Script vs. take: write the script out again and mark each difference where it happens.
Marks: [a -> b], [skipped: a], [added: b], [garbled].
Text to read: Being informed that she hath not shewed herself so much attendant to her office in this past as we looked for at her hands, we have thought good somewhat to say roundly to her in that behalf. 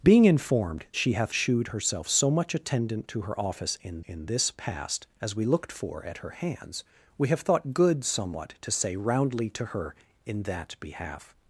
Being informed [skipped: that] she hath [skipped: not] shewed herself so much attendant to her office in [added: in] this past as we looked for at her hands, we have thought good somewhat to say roundly to her in that behalf.